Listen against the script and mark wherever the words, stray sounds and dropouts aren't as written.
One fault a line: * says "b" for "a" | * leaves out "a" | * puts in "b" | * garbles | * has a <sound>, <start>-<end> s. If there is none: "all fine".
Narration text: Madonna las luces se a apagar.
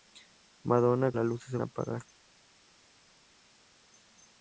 all fine